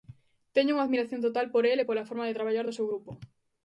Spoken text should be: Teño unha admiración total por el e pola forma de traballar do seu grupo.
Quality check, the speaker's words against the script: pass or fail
pass